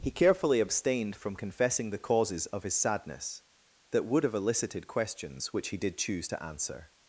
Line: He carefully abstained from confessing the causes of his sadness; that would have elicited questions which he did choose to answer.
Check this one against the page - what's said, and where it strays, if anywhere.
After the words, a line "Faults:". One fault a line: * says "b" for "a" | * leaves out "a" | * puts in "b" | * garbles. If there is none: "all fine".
He carefully abstained from confessing the causes of his sadness; that would have elicited questions which he did choose to answer.
Faults:
all fine